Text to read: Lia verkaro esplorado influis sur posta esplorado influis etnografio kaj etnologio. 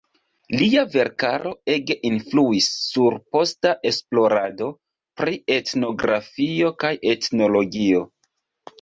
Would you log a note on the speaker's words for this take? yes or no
yes